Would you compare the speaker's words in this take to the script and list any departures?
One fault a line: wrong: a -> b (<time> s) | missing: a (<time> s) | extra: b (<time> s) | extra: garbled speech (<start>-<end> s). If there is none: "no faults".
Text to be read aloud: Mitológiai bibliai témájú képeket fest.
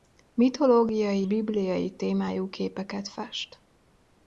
no faults